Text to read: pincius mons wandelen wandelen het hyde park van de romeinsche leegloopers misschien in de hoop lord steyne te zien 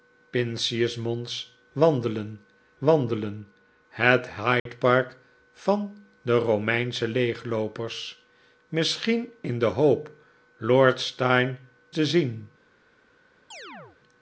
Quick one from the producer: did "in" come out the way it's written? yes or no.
yes